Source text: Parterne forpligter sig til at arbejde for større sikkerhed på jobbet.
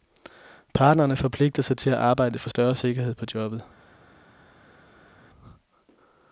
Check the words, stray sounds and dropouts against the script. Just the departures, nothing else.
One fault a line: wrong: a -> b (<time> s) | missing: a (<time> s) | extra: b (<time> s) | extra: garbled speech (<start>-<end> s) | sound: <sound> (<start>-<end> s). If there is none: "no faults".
no faults